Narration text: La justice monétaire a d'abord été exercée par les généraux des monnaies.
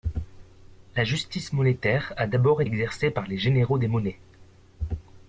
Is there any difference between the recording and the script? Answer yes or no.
yes